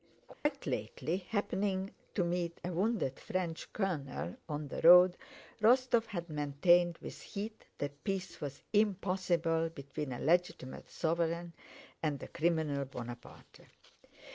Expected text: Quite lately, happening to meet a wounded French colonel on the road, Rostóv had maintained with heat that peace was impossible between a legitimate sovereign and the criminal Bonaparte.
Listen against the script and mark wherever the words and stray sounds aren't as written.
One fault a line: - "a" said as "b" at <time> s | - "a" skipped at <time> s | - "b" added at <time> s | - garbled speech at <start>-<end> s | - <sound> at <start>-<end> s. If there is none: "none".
- dropout at 0.3-0.5 s